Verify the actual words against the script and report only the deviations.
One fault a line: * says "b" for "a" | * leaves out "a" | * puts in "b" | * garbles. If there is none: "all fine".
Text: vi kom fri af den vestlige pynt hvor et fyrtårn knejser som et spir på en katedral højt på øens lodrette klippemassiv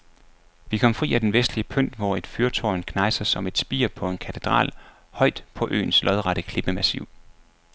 all fine